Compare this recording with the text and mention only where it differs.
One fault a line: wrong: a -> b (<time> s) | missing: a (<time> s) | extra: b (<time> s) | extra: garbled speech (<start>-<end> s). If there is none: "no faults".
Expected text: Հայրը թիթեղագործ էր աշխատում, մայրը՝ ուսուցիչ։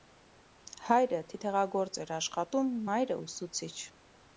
no faults